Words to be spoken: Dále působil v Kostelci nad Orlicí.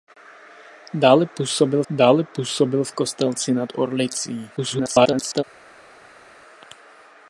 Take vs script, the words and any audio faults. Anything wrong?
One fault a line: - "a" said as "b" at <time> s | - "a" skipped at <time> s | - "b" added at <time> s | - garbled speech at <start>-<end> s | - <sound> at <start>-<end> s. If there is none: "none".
- "dále působil" added at 1.9 s
- garbled speech at 4.6-5.4 s